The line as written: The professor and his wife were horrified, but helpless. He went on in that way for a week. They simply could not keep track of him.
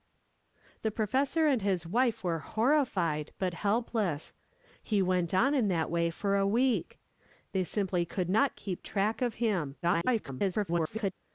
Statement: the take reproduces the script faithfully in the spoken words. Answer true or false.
false